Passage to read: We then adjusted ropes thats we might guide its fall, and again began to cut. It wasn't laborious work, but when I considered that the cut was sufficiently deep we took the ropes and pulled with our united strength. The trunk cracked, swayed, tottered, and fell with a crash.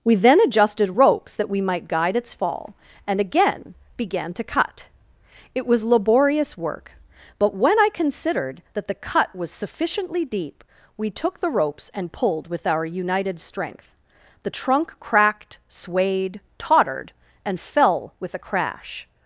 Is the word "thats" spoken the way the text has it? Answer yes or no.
no